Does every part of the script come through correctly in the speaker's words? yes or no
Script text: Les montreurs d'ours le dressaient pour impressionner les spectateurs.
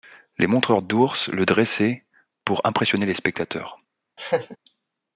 yes